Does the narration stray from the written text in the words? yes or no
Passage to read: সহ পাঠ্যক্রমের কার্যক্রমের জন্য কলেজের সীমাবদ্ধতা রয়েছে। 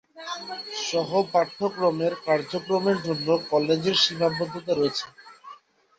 no